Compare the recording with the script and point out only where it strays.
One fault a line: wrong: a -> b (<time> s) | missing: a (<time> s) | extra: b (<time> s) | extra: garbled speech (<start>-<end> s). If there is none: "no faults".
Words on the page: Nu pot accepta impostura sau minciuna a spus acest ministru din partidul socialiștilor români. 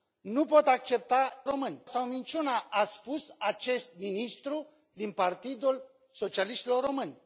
wrong: impostura -> români (1.5 s)